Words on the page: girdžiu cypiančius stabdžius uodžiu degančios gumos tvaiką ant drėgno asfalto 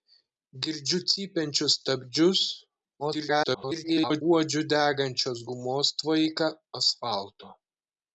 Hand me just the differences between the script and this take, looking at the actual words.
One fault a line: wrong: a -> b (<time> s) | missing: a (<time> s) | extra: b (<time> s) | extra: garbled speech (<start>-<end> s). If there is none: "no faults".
extra: garbled speech (3.0-4.2 s)
missing: ant drėgno (6.5 s)